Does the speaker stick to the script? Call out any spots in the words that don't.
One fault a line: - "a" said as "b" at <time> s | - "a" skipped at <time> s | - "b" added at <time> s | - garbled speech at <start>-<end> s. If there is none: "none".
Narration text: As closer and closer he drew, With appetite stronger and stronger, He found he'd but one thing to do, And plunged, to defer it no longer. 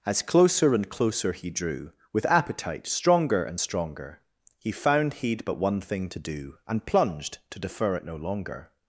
none